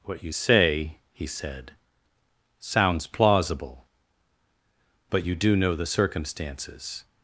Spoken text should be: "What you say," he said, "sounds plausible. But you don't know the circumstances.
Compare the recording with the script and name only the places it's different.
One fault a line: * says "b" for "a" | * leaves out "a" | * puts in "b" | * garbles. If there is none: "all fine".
* says "do" for "don't"